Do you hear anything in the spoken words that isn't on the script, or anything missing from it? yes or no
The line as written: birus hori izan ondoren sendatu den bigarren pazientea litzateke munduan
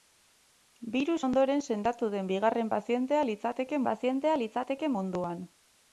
yes